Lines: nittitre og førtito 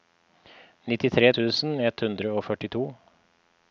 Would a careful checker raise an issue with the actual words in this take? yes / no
yes